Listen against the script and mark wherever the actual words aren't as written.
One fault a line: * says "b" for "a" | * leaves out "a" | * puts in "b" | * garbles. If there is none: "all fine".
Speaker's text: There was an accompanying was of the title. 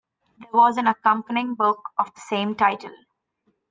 * says "book" for "was"
* puts in "same"